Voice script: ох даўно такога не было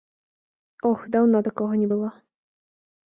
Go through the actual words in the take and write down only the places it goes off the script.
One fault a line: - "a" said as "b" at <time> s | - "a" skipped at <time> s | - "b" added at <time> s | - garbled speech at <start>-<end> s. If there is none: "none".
none